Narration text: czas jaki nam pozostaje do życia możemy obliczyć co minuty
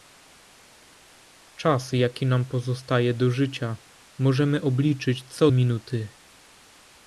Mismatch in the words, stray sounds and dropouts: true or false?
false